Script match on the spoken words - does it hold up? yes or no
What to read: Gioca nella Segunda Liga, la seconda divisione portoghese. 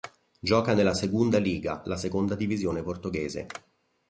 yes